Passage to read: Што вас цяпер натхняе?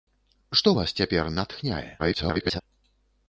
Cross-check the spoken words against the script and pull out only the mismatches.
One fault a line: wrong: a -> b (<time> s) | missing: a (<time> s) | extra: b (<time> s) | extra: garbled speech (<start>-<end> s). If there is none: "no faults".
extra: garbled speech (2.0-2.6 s)